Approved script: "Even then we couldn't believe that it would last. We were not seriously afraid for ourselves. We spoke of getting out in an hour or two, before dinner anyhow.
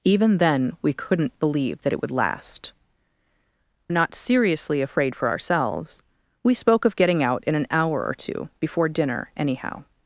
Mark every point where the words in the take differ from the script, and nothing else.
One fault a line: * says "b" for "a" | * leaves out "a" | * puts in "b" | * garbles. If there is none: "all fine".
* leaves out "We were"